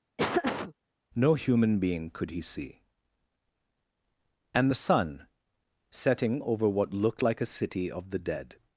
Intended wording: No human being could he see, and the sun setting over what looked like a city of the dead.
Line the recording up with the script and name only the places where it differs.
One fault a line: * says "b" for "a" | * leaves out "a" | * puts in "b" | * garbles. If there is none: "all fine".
all fine